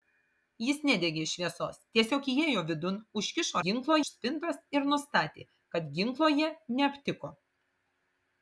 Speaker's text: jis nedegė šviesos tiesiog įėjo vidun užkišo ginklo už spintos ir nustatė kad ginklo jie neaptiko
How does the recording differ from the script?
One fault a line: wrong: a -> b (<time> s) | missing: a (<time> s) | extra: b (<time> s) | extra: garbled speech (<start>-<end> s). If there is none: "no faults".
no faults